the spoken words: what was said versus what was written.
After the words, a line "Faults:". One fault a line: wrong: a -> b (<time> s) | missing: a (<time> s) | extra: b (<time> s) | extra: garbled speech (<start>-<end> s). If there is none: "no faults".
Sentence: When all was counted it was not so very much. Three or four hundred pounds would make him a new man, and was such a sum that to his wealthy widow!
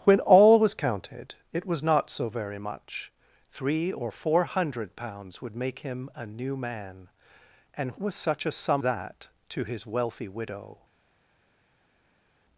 When all was counted it was not so very much. Three or four hundred pounds would make him a new man, and was such a sum that to his wealthy widow!
Faults:
no faults